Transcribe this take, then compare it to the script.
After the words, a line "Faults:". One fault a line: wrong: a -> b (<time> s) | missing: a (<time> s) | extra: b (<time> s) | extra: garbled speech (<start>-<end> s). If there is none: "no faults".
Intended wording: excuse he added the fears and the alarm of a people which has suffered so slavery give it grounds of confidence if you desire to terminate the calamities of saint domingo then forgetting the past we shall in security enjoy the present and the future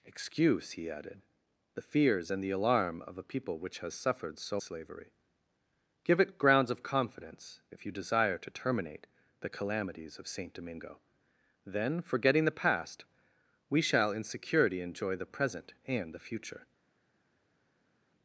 excuse he added the fears and the alarm of a people which has suffered so slavery give it grounds of confidence if you desire to terminate the calamities of saint domingo then forgetting the past we shall in security enjoy the present and the future
Faults:
no faults